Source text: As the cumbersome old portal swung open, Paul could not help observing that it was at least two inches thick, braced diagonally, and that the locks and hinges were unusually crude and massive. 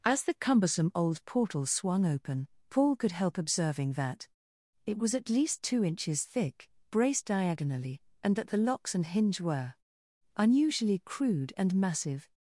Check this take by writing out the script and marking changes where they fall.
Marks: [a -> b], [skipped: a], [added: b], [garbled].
As the cumbersome old portal swung open, Paul could [skipped: not] help observing that it was at least two inches thick, braced diagonally, and that the locks and [hinges -> hinge] were unusually crude and massive.